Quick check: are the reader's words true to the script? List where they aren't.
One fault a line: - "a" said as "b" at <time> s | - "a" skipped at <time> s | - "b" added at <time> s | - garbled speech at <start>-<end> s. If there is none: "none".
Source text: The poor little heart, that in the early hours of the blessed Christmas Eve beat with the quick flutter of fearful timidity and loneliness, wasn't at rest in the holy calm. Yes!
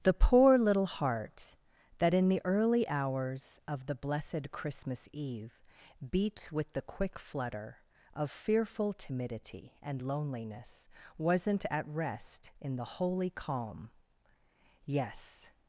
none